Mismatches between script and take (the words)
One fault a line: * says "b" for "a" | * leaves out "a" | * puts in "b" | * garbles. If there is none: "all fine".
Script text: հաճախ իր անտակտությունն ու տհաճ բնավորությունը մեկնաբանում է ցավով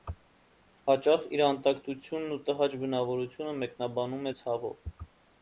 all fine